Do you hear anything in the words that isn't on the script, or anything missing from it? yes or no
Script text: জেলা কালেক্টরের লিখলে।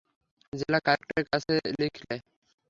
yes